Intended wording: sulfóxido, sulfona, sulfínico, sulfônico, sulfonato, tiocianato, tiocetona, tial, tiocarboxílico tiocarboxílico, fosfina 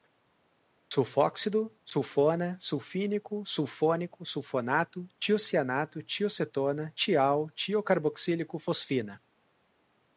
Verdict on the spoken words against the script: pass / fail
fail